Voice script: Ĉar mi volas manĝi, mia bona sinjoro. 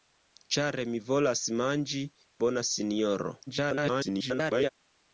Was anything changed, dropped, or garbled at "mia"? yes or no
yes